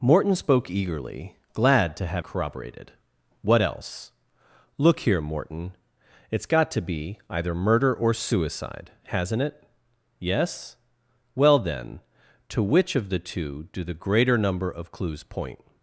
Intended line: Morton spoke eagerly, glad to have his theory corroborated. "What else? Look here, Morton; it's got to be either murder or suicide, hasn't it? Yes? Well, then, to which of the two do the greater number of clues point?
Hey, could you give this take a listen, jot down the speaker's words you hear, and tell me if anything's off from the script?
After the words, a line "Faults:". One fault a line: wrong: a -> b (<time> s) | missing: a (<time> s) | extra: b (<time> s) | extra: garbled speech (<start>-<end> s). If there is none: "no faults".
Morton spoke eagerly, glad to have corroborated. "What else? Look here, Morton; it's got to be either murder or suicide, hasn't it? Yes? Well, then, to which of the two do the greater number of clues point?
Faults:
missing: his theory (2.2 s)